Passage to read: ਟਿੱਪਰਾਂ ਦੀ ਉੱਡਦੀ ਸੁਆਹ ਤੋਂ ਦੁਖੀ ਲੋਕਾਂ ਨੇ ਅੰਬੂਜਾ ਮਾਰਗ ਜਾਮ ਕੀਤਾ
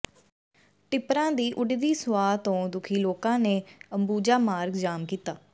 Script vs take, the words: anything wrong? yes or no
no